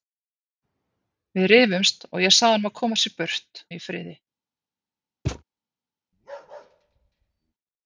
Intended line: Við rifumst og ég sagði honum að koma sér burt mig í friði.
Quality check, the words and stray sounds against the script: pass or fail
fail